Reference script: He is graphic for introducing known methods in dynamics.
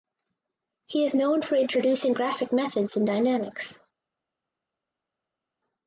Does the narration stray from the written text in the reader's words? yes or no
yes